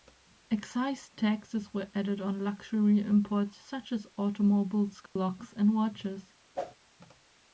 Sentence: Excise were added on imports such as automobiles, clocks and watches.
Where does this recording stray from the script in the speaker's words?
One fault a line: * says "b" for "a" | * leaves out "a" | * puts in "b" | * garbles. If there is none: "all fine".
* puts in "taxes"
* puts in "luxury"